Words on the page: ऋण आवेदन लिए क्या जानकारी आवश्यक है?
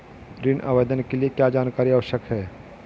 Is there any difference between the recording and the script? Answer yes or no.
yes